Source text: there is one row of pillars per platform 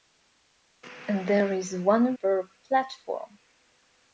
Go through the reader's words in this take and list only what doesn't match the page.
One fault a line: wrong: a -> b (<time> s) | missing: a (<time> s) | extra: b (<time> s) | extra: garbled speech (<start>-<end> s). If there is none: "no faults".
missing: row of pillars (2.1 s)